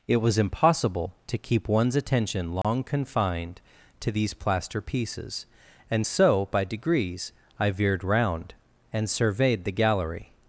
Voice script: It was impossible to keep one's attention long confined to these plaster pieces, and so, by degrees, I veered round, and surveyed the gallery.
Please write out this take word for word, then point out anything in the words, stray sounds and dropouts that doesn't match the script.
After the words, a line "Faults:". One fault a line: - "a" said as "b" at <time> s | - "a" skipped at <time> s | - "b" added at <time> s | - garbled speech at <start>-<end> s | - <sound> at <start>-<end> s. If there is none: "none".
It was impossible to keep one's attention long confined to these plaster pieces, and so, by degrees, I veered round, and surveyed the gallery.
Faults:
- dropout at 2.6-2.6 s